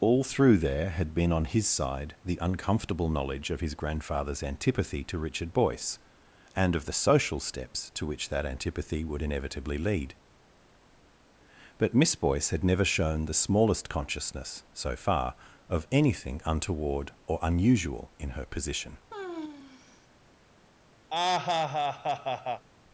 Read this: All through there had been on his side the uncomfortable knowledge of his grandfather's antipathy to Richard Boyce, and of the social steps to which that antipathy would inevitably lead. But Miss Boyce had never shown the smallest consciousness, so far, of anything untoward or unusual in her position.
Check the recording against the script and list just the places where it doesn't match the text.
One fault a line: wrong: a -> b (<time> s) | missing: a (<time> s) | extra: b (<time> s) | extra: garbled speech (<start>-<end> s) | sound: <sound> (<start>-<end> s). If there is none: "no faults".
sound: sigh (19.1-20.1 s)
sound: laugh (21.1-22.7 s)